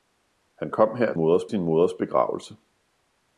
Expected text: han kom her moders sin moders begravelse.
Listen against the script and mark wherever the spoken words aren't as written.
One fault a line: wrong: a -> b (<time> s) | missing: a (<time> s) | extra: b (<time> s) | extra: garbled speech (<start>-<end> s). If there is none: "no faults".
no faults